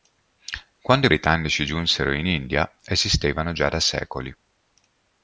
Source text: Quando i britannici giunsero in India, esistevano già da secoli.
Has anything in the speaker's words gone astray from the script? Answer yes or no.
no